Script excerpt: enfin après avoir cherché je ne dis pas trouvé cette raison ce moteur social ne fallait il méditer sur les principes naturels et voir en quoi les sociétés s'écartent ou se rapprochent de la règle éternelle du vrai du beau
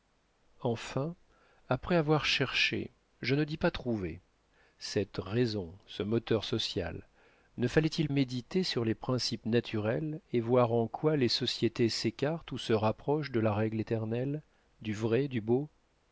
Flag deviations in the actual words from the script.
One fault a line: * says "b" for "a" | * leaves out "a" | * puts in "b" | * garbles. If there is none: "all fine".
all fine